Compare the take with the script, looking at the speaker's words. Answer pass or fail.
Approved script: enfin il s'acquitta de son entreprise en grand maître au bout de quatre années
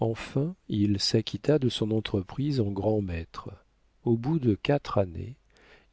pass